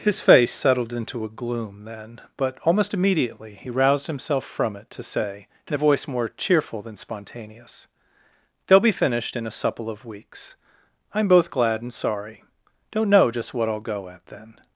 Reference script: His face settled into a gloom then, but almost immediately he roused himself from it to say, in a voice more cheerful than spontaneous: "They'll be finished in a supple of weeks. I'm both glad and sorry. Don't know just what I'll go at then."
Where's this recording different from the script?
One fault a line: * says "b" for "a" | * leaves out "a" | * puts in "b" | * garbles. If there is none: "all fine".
all fine